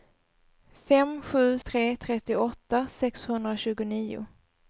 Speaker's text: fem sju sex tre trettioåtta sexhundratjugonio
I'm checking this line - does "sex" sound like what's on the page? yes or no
no